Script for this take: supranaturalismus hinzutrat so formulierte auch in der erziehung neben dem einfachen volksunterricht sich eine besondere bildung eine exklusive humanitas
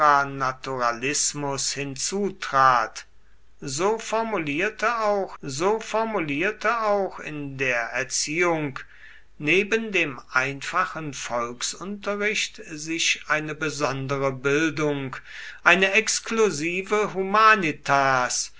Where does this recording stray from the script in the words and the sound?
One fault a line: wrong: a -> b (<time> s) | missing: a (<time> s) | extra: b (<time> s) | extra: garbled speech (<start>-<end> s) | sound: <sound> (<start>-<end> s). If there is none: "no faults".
extra: so formulierte auch (5.4 s)